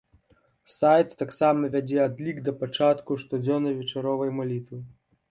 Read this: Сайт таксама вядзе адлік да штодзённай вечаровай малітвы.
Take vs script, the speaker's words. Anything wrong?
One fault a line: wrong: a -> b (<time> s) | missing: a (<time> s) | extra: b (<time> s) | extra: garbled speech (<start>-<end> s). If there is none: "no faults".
extra: пачатку (2.6 s)